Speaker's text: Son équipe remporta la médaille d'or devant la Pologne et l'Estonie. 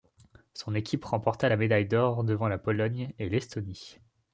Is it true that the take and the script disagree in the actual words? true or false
false